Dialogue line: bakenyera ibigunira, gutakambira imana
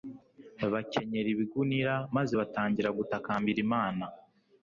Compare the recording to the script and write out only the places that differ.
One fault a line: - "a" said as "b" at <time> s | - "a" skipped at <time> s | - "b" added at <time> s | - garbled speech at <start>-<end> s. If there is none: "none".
- "maze batangira" added at 2.2 s